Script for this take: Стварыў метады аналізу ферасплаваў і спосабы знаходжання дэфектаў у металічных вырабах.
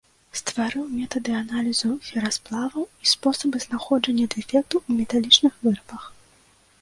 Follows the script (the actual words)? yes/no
yes